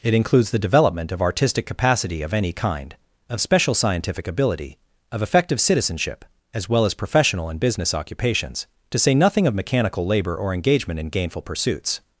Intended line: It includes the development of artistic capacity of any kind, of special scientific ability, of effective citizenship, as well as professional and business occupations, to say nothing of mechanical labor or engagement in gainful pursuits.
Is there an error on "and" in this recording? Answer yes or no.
no